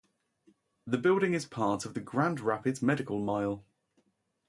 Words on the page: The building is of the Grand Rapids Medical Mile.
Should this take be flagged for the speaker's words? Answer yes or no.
yes